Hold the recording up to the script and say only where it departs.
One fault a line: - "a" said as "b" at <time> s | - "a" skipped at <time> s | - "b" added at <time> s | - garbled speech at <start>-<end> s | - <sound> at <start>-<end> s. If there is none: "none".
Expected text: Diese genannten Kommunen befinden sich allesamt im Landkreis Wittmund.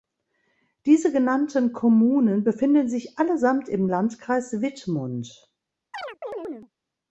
- chirp at 5.9-6.7 s